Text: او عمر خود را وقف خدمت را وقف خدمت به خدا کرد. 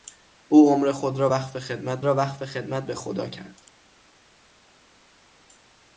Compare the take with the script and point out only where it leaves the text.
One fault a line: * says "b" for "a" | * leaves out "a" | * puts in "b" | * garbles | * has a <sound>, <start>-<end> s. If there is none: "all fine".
all fine